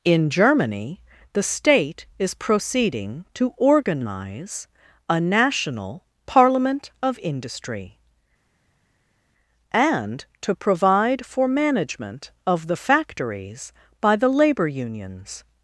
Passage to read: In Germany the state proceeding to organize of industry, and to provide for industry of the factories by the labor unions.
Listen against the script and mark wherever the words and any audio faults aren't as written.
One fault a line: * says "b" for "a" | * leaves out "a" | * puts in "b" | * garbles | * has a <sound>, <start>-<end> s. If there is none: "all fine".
* puts in "is"
* puts in "a national parliament"
* says "management" for "industry"